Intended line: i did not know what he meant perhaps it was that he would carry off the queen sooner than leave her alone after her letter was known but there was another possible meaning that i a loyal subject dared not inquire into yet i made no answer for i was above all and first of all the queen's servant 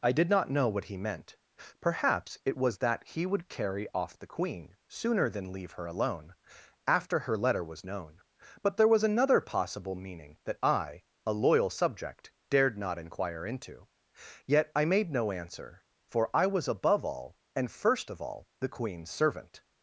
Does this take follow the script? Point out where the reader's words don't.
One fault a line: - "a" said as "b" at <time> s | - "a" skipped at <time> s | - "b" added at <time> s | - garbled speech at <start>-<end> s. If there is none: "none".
none